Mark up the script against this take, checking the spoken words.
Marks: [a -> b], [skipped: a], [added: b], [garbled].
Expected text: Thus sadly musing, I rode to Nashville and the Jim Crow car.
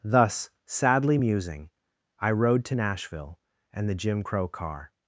Thus sadly musing, I rode to Nashville and the Jim Crow car.